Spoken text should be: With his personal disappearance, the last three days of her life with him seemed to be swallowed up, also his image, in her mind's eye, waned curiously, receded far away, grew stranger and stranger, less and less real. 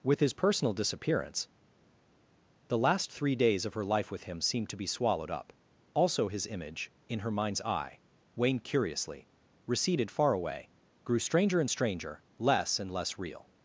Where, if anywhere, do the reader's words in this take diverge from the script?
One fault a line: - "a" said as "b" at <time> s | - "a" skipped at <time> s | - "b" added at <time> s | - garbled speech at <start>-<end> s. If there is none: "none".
none